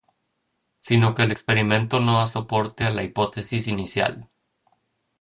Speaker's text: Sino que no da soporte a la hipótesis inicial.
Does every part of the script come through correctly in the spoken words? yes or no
no